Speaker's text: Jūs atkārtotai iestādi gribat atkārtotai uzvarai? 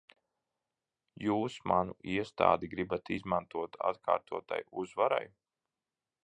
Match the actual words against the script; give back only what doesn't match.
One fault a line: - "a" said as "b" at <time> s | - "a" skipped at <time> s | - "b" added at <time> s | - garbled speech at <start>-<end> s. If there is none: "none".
- "atkārtotai" said as "manu" at 1.7 s
- "izmantot" added at 3.2 s